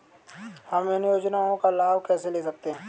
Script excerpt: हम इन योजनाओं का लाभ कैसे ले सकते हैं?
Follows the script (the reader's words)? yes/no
yes